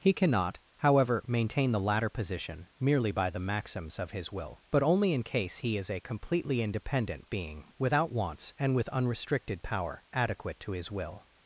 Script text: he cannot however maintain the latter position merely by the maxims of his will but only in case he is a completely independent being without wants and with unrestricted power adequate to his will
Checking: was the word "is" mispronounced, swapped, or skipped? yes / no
no